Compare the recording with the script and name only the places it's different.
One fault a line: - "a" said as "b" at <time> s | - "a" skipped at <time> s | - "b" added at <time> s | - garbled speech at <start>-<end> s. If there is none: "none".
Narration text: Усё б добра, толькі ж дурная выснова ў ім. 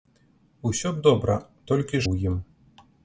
- "ж дурная выснова" skipped at 2.0 s